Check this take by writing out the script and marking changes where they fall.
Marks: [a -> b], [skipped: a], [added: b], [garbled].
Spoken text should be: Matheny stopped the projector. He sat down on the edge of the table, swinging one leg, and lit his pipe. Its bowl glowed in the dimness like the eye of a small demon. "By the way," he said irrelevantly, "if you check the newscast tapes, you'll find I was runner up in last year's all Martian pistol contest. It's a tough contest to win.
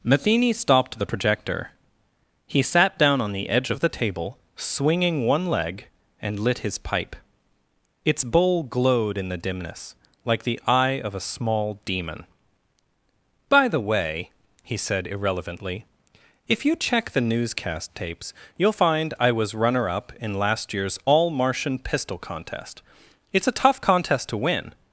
Matheny stopped the projector. He sat down on the edge of the table, swinging one leg, and lit his pipe. Its bowl glowed in the dimness like the eye of a small demon. "By the way," he said irrelevantly, "if you check the newscast tapes, you'll find I was runner up in last year's all Martian pistol contest. It's a tough contest to win.